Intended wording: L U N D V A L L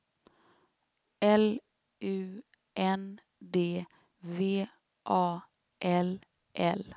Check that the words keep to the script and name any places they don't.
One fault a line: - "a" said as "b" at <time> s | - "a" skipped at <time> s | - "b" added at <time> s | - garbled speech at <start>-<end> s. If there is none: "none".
none